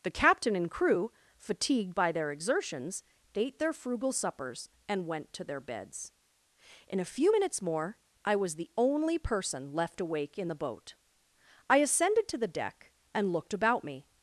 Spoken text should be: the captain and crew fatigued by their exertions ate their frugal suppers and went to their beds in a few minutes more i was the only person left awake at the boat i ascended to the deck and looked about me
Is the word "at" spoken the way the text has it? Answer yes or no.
no